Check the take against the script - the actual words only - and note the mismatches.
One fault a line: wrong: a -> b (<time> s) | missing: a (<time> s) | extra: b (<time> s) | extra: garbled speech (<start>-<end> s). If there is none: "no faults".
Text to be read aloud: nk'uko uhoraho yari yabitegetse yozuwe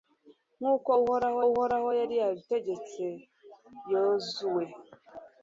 extra: uhoraho (1.5 s)